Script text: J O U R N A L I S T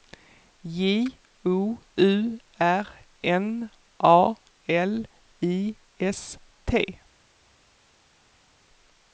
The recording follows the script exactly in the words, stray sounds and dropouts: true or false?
true